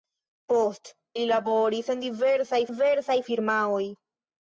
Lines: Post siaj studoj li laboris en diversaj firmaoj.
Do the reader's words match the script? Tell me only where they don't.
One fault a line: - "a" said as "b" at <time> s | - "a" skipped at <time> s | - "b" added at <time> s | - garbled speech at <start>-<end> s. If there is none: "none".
- "siaj studoj" skipped at 0.9 s
- "diversaj" added at 2.7 s